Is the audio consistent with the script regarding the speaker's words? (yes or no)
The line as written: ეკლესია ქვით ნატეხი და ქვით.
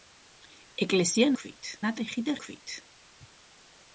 yes